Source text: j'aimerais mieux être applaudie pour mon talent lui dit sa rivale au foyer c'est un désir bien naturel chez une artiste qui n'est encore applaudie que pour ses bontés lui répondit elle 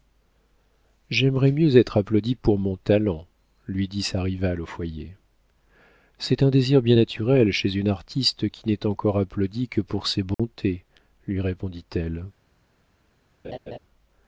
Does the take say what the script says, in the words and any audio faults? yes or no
no